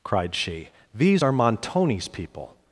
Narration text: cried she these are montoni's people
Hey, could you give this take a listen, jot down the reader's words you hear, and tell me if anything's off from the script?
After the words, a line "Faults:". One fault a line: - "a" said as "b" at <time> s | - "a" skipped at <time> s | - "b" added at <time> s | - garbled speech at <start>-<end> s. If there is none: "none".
cried she these are montoni's people
Faults:
none